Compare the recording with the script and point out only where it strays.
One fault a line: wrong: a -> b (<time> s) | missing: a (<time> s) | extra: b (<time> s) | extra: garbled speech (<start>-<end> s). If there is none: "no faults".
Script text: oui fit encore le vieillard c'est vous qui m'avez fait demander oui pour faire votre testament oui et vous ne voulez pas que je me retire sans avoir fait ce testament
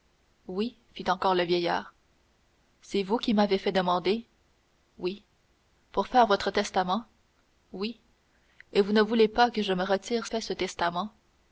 missing: sans avoir (10.3 s)